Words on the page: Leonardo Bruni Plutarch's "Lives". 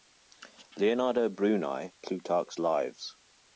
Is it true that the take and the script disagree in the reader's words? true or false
false